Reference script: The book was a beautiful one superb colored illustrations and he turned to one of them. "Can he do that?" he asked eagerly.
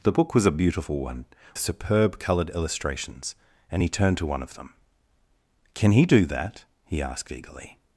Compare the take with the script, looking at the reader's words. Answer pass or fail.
pass